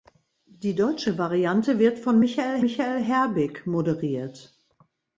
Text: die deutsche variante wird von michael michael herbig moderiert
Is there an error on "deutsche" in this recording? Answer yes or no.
no